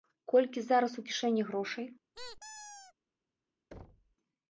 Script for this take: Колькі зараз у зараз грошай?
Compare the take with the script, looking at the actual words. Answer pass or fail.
fail